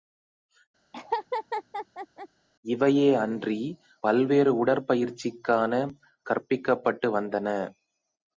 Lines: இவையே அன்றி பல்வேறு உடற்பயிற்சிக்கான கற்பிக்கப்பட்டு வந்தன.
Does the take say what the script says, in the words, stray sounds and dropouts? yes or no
no